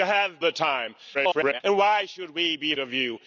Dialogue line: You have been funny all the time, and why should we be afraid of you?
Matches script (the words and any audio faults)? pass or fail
fail